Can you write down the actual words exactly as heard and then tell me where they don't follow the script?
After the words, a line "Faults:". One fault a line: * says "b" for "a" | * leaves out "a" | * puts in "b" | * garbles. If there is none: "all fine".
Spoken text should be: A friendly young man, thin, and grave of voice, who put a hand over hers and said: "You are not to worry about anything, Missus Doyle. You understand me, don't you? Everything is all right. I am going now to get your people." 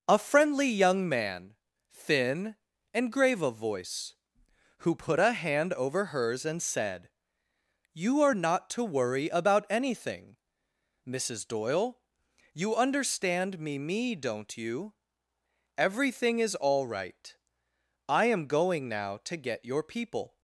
A friendly young man, thin, and grave of voice, who put a hand over hers and said: "You are not to worry about anything, Missus Doyle. You understand me me, don't you? Everything is all right. I am going now to get your people."
Faults:
* puts in "me"